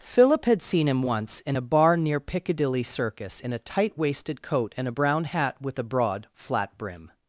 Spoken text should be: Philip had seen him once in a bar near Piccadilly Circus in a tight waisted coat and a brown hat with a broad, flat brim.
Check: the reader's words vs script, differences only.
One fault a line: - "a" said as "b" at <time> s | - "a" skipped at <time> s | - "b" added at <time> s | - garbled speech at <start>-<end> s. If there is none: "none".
none